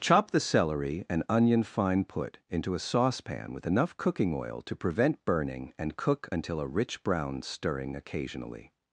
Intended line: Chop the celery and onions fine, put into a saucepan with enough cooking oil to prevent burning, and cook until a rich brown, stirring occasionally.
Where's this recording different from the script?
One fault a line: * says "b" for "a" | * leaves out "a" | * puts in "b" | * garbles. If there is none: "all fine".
* says "onion" for "onions"